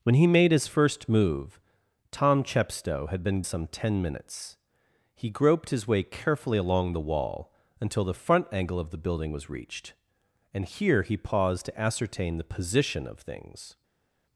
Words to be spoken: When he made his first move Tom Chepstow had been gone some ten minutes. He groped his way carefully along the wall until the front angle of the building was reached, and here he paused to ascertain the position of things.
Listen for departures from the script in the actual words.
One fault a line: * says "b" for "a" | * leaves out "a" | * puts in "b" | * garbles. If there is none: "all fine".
* leaves out "gone"